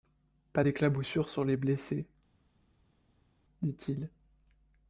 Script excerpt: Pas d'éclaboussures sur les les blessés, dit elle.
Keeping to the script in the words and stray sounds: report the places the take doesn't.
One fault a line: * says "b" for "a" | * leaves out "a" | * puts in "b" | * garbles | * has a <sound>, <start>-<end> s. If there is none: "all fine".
* leaves out "les"
* says "il" for "elle"